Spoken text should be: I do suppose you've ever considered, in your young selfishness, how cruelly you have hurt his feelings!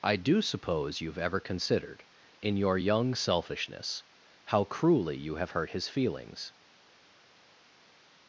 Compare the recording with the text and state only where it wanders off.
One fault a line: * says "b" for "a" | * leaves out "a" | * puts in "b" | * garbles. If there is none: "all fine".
all fine